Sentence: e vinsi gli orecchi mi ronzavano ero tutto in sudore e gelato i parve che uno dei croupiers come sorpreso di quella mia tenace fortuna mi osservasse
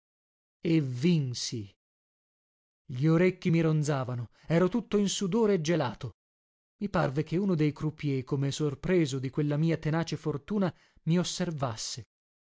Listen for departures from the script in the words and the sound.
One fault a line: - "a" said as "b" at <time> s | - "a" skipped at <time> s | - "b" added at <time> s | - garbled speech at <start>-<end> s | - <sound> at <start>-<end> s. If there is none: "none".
none